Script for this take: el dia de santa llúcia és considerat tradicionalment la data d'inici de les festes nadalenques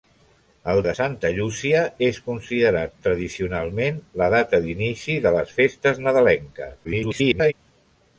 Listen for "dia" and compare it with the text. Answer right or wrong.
wrong